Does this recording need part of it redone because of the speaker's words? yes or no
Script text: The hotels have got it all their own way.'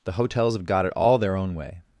no